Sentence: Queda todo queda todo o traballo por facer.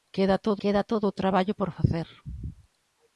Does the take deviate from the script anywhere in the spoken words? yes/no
no